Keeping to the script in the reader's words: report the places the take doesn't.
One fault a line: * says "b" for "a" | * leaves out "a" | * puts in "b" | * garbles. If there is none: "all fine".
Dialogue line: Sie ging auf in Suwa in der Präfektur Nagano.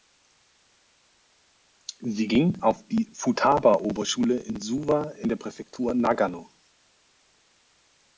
* puts in "die Futaba Oberschule"